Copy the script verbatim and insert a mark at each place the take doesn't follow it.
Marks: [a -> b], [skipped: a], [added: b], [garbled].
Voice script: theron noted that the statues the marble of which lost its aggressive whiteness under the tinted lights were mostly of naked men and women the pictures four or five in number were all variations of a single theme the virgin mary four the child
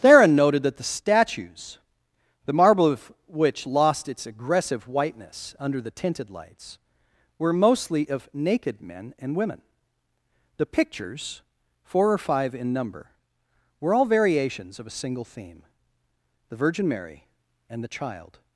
theron noted that the statues the marble of which lost its aggressive whiteness under the tinted lights were mostly of naked men and women the pictures four or five in number were all variations of a single theme the virgin mary [four -> and] the child